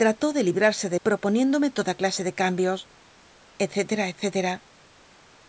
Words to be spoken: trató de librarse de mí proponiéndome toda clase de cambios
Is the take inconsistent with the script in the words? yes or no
yes